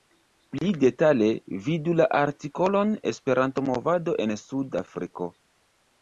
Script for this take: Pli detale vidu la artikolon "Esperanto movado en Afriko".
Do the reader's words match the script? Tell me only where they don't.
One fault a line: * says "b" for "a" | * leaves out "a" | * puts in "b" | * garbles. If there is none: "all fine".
* puts in "Sud"